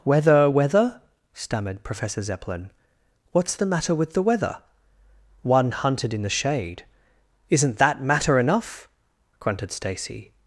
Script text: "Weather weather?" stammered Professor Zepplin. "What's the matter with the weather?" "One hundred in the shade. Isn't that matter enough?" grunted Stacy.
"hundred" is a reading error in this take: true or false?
true